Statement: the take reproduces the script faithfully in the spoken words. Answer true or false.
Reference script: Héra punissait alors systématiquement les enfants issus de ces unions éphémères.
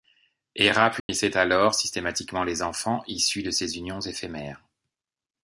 true